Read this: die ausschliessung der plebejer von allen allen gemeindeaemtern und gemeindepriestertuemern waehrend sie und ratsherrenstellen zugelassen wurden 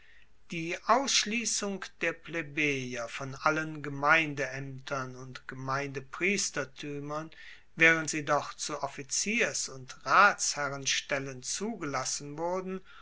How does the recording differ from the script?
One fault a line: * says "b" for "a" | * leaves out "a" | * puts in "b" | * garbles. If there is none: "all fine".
* leaves out "allen"
* puts in "doch zu offiziers"